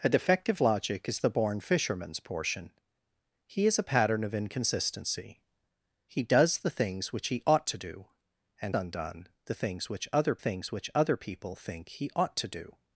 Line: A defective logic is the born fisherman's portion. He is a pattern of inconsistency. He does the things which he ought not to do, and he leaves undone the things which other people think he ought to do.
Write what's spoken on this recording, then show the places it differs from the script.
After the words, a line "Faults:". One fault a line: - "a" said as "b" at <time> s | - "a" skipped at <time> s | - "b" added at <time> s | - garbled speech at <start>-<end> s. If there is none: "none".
A defective logic is the born fisherman's portion. He is a pattern of inconsistency. He does the things which he ought to do, and undone the things which other things which other people think he ought to do.
Faults:
- "not" skipped at 7.7 s
- "he leaves undone the" said as "undone the things which other" at 8.7 s